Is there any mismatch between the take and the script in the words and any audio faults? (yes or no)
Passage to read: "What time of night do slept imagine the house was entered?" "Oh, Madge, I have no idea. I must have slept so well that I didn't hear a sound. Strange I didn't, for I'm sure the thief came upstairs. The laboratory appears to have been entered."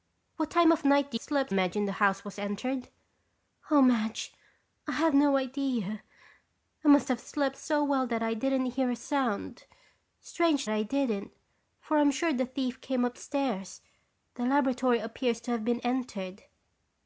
no